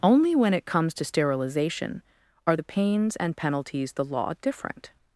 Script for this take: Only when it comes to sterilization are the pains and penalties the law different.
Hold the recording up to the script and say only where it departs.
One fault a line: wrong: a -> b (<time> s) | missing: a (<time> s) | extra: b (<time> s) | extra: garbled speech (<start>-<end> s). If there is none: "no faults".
no faults